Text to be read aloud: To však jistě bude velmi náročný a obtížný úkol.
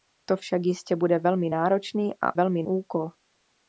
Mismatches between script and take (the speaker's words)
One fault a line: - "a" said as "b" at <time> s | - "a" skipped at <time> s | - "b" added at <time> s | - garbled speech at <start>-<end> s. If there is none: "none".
- "obtížný" said as "velmi" at 2.3 s